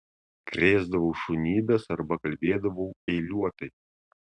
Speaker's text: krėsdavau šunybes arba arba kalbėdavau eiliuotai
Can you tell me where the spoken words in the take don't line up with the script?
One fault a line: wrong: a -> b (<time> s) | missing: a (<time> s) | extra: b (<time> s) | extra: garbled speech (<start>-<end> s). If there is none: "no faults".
missing: arba (2.2 s)